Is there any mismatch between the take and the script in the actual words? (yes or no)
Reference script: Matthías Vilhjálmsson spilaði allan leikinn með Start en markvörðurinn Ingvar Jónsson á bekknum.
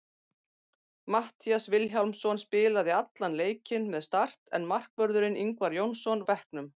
no